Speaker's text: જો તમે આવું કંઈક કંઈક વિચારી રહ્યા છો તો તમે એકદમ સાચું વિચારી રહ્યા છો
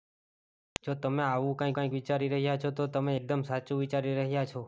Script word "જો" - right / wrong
right